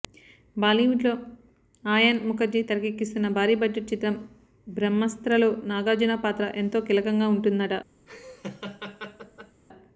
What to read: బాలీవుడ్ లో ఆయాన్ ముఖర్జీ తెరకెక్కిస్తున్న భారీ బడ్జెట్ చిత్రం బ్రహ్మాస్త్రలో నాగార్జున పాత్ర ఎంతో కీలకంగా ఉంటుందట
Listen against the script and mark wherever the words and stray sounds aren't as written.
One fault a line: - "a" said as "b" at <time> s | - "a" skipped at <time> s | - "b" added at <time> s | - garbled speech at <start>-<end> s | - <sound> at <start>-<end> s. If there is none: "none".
- laugh at 8.1-9.6 s